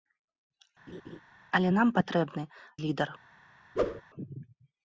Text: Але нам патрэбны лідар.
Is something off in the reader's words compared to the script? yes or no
no